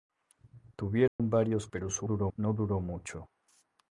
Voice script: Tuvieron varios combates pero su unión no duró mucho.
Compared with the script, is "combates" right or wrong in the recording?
wrong